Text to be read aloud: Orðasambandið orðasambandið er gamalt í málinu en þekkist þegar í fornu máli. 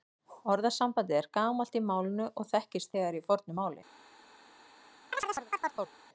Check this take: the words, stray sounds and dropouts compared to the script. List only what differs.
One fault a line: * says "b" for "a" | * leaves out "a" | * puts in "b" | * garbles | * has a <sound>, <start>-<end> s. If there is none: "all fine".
* leaves out "orðasambandið"
* says "og" for "en"
* has a chirp, 5.1-5.9 s